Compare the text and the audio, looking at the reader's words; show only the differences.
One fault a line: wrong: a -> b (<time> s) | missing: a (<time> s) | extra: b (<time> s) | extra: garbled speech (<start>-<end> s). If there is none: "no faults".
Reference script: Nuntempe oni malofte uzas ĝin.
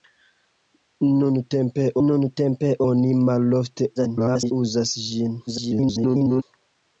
extra: nuntempe (2.0 s)
extra: garbled speech (4.0-4.5 s)
extra: garbled speech (5.5-6.4 s)